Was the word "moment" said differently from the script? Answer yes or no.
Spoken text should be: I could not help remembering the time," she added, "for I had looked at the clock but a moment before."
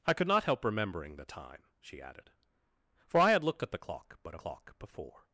yes